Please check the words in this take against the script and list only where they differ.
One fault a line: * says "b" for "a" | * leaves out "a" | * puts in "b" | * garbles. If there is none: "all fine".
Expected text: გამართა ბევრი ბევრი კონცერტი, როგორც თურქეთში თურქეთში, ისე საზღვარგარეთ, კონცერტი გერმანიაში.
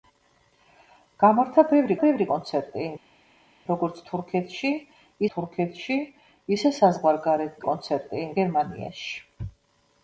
all fine